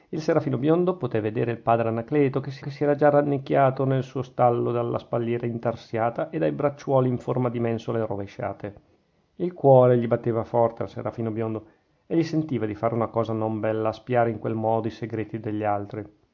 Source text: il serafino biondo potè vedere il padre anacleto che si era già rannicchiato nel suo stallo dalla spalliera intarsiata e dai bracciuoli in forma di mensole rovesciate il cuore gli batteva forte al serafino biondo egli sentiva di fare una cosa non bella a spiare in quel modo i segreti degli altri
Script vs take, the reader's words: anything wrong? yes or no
yes